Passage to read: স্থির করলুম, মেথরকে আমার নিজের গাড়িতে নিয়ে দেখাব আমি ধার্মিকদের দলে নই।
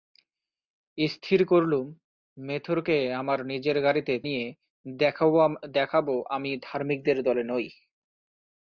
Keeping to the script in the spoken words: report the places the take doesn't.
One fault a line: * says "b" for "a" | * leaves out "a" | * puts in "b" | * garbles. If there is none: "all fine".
all fine